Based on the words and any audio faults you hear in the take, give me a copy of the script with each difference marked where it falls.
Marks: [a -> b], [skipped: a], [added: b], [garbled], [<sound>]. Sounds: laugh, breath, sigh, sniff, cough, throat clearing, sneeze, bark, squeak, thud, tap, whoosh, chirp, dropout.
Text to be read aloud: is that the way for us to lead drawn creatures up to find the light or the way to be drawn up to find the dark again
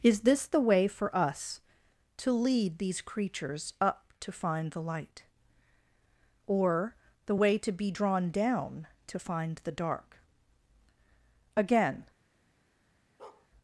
is [that -> this] the way for us to lead [drawn -> these] creatures up to find the light or the way to be drawn [up -> down] to find the dark again [bark]